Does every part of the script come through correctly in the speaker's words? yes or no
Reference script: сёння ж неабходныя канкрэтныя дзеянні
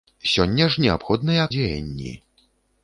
no